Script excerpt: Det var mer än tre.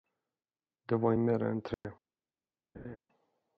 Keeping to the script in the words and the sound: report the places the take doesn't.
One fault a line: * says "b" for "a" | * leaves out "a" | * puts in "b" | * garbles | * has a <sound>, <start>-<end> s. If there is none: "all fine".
* has a dropout, 1.7-1.8 s
* has a laugh, 2.7-3.0 s